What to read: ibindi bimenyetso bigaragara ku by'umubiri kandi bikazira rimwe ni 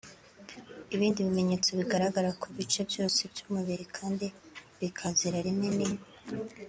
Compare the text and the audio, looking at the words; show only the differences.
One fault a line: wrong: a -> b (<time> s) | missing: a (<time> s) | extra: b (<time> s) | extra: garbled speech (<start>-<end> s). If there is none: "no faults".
extra: bice byose (2.5 s)